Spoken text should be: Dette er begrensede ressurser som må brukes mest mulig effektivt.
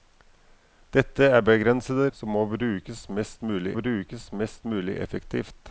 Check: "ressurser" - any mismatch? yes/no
yes